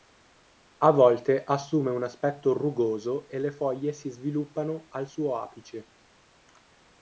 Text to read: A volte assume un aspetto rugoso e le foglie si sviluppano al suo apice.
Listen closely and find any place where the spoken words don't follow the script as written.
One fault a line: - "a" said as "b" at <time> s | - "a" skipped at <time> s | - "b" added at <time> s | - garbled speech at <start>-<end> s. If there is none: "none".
none